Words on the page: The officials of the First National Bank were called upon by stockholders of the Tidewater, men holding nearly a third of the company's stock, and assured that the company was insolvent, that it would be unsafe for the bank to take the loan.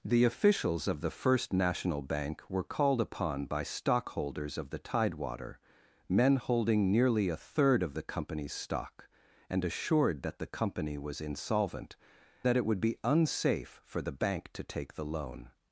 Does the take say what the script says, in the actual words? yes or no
yes